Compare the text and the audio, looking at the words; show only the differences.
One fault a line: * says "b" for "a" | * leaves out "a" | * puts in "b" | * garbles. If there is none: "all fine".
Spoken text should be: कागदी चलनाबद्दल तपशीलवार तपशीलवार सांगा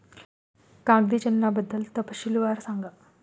* leaves out "तपशीलवार"